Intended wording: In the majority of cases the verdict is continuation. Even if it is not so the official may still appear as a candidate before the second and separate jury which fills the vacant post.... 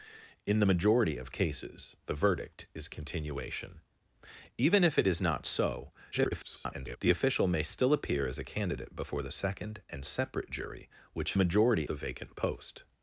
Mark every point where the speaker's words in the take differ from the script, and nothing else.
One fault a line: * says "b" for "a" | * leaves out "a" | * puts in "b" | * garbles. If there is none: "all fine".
* garbles
* says "majority" for "fills"